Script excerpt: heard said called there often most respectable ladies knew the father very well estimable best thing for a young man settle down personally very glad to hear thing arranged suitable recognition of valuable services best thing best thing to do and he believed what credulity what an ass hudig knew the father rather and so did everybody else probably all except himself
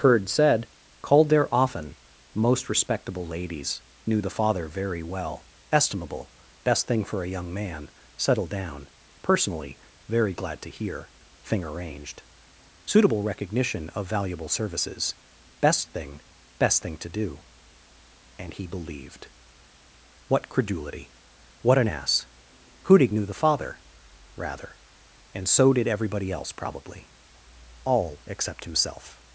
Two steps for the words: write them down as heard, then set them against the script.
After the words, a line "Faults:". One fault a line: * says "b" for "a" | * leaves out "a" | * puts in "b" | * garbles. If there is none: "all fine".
heard said called there often most respectable ladies knew the father very well estimable best thing for a young man settle down personally very glad to hear thing arranged suitable recognition of valuable services best thing best thing to do and he believed what credulity what an ass hudig knew the father rather and so did everybody else probably all except himself
Faults:
all fine